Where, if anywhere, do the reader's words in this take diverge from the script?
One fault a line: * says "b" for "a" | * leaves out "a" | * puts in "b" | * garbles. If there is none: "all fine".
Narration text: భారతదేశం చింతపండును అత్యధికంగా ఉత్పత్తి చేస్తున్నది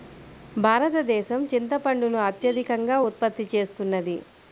all fine